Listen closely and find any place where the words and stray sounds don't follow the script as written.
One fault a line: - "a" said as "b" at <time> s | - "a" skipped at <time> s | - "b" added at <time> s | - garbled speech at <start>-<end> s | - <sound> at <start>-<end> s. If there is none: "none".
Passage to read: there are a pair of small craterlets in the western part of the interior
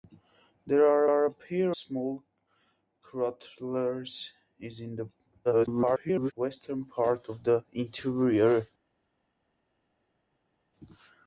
- "are" added at 1.1 s
- "of" skipped at 1.8 s
- garbled speech at 5.4-6.3 s